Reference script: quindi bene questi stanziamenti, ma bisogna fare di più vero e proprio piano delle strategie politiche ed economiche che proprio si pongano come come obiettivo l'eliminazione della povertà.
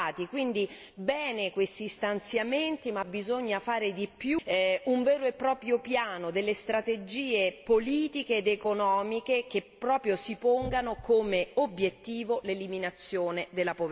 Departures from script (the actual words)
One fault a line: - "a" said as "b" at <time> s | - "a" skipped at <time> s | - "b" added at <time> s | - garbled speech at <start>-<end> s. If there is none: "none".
- "un" added at 4.8 s
- "come" skipped at 11.5 s